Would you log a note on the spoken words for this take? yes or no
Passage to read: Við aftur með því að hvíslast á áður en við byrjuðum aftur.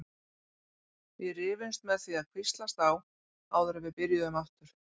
yes